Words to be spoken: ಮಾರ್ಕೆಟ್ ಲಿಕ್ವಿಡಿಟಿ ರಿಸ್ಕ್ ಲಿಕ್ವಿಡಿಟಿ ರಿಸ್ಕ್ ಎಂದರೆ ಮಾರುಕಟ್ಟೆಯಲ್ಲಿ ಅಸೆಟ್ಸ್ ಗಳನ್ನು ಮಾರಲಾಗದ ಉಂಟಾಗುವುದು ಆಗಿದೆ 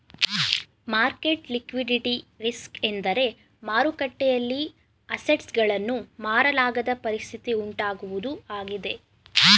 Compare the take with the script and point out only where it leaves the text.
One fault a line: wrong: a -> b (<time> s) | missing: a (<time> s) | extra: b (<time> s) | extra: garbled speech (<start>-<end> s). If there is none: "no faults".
missing: ಲಿಕ್ವಿಡಿಟಿ ರಿಸ್ಕ್ (2.8 s)
extra: ಪರಿಸ್ಥಿತಿ (7.0 s)